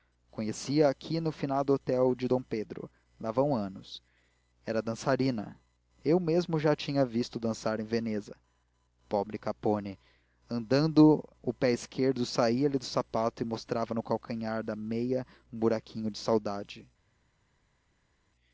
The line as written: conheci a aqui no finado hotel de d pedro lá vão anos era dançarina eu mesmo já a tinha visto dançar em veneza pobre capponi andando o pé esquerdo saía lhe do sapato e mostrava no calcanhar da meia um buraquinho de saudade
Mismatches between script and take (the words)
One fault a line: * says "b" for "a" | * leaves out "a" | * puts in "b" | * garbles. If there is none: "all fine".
all fine